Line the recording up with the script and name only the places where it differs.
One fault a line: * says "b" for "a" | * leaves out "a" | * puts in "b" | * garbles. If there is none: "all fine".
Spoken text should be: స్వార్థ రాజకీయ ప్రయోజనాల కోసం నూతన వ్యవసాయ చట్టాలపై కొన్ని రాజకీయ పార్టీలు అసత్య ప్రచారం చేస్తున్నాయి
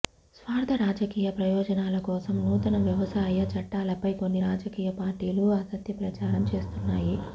all fine